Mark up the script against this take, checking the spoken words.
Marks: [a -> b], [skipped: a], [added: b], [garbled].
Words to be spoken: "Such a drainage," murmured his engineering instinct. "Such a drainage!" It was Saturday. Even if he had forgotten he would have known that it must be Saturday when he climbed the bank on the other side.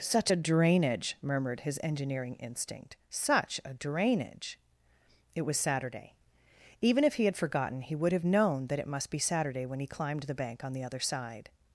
"Such a drainage," murmured his engineering instinct. "Such a drainage!" It was Saturday. Even if he had forgotten he would have known that it must be Saturday when he climbed the bank on the other side.